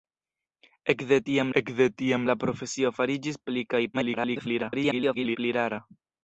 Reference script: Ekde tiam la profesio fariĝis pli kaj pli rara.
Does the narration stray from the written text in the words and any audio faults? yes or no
yes